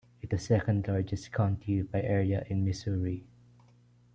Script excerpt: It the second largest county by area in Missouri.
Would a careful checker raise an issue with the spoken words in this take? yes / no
no